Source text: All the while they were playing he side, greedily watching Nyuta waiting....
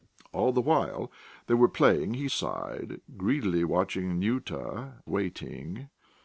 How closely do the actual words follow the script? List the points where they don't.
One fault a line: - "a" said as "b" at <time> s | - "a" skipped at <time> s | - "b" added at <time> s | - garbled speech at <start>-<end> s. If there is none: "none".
none